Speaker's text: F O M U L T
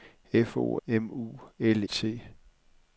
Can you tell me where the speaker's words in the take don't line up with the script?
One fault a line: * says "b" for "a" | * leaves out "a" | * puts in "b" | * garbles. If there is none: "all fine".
all fine